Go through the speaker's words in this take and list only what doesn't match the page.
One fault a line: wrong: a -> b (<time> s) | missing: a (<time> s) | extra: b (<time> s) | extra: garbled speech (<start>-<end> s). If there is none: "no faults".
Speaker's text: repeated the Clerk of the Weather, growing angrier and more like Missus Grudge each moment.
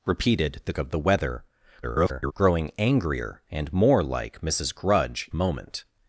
missing: Clerk (0.7 s)
extra: garbled speech (1.8-2.3 s)
missing: each (5.3 s)